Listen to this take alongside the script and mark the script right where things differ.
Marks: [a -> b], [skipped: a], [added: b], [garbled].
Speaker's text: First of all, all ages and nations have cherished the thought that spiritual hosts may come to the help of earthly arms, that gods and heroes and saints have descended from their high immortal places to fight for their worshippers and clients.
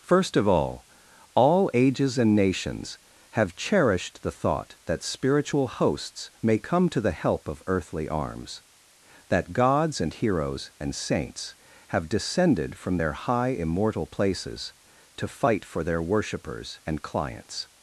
First of all, all ages and nations have cherished the thought that spiritual hosts may come to the help of earthly arms, that gods and heroes and saints have descended from their high immortal places to fight for their worshippers and clients.